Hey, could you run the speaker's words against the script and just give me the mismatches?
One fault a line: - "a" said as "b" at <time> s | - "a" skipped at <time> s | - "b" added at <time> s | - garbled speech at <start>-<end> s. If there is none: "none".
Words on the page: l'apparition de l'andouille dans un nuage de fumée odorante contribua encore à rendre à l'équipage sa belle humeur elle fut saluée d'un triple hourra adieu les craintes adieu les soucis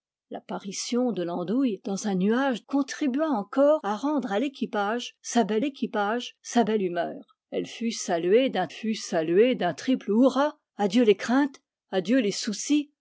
- "de fumée odorante" skipped at 2.6 s
- "l'équipage sa belle" added at 5.6 s
- "fut saluée d'un" added at 8.7 s